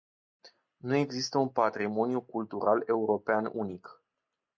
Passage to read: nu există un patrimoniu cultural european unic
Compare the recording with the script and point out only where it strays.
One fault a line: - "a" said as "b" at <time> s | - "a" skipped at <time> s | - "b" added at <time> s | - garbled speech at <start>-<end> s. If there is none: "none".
none